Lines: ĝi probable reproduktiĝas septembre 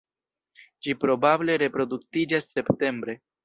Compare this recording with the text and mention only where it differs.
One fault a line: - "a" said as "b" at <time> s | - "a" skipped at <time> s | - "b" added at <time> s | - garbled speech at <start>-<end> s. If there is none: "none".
none